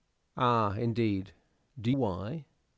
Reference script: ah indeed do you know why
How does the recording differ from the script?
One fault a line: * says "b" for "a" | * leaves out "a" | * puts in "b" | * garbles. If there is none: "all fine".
* leaves out "you know"